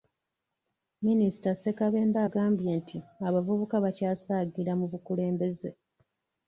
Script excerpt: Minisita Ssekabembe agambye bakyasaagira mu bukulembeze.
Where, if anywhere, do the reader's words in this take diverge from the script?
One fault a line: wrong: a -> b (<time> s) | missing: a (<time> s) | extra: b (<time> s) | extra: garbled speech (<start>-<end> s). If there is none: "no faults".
extra: nti abavubuka (2.8 s)